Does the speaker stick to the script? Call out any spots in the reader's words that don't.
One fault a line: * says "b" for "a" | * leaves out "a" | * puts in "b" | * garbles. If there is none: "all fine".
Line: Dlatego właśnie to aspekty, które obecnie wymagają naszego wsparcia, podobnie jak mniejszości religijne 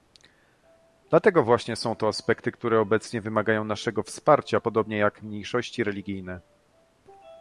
* puts in "są"